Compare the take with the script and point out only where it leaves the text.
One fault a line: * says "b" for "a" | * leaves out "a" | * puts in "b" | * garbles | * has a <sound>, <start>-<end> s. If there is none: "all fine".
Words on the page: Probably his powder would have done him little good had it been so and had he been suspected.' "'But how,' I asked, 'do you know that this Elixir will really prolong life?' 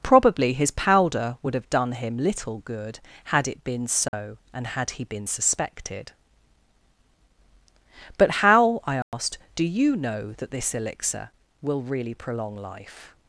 * has a dropout, 4.1-4.1 s
* has a dropout, 9.0-9.1 s